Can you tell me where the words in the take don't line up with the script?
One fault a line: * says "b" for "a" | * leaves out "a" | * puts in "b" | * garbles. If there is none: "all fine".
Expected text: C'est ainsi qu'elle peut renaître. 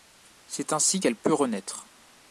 all fine